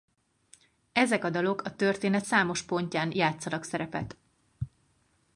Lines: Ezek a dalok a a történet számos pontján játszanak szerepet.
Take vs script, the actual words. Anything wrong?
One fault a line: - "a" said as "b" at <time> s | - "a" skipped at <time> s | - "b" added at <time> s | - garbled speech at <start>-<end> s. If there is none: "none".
- "a" skipped at 1.8 s